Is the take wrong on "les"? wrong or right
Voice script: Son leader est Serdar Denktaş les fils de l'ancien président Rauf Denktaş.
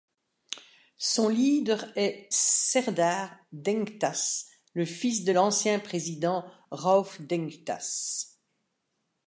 wrong